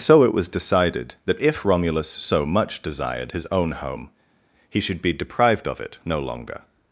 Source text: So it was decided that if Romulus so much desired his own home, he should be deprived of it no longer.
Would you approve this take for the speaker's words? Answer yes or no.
yes